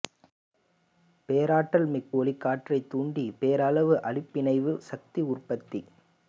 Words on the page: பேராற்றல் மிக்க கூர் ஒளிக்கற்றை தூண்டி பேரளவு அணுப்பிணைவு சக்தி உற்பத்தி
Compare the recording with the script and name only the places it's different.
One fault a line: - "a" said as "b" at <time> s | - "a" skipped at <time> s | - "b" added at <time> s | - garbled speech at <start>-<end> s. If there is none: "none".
- "கூர்" skipped at 2.1 s